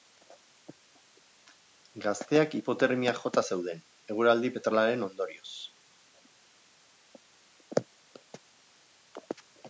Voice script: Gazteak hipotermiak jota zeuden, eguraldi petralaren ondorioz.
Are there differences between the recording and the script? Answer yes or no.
no